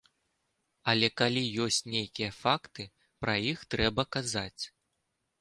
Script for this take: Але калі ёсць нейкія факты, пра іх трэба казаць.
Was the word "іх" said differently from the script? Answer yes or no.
no